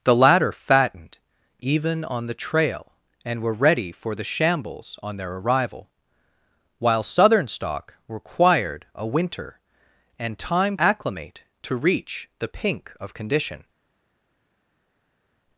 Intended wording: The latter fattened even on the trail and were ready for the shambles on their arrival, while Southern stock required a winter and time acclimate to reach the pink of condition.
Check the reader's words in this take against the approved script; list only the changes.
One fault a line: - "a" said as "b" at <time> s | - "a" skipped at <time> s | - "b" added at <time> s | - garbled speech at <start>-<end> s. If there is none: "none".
none